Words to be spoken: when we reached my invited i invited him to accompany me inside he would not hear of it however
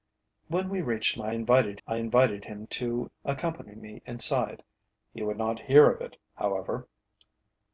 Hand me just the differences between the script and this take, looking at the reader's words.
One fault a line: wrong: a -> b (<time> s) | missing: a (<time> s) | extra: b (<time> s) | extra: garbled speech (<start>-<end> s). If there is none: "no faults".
no faults